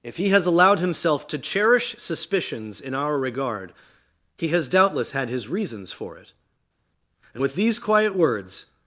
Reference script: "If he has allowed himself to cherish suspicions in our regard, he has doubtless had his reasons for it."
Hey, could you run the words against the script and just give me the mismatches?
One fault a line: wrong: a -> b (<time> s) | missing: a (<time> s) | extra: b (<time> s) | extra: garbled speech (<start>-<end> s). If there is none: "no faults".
extra: And with these quiet words (7.3 s)